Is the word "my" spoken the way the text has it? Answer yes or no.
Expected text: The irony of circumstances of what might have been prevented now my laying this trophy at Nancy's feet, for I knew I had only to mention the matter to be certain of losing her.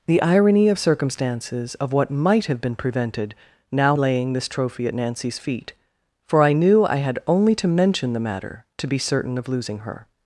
no